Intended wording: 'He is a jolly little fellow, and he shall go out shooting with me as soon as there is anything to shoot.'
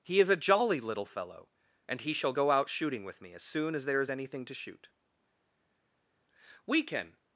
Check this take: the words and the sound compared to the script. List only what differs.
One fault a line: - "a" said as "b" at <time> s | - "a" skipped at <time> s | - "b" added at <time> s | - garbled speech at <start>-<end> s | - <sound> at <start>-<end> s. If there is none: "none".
- "We can" added at 6.6 s